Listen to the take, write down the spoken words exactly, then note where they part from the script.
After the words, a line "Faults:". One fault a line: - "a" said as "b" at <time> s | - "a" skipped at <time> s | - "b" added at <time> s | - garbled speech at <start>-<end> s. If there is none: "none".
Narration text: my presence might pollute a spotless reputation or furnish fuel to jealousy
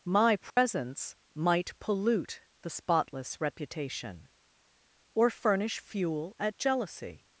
my presence might pollute the spotless reputation or furnish fuel at jealousy
Faults:
- "a" said as "the" at 2.6 s
- "to" said as "at" at 6.4 s